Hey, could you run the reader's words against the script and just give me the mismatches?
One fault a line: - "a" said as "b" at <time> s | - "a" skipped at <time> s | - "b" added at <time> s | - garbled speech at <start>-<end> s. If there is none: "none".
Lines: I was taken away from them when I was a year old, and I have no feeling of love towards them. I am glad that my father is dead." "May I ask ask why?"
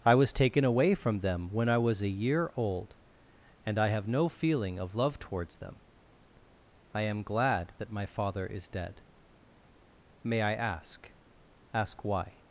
none